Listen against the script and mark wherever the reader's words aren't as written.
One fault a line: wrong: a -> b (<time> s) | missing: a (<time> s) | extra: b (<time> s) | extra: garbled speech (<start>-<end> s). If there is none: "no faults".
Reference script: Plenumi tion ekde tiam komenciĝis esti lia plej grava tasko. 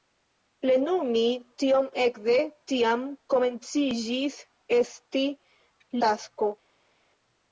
missing: lia plej grava (5.2 s)